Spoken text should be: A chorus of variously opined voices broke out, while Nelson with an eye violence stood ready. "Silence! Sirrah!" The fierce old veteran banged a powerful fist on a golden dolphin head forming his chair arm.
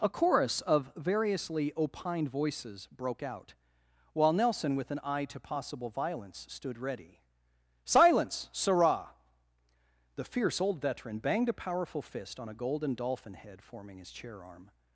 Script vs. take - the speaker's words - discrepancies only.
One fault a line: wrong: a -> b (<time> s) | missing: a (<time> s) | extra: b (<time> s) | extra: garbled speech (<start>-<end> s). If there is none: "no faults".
extra: to possible (5.2 s)